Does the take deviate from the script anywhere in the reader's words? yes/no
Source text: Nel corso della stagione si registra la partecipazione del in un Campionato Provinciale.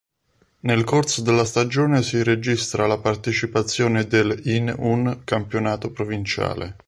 no